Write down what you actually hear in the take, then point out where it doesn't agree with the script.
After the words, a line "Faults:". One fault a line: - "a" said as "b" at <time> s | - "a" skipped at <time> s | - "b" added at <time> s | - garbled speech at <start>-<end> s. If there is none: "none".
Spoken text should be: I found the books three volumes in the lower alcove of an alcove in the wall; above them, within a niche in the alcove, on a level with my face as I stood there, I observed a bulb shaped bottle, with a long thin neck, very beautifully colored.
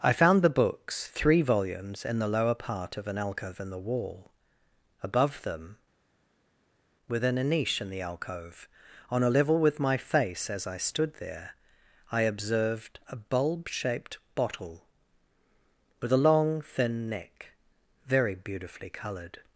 I found the books three volumes in the lower part of an alcove in the wall; above them, within a niche in the alcove, on a level with my face as I stood there, I observed a bulb shaped bottle, with a long thin neck, very beautifully colored.
Faults:
- "alcove" said as "part" at 2.5 s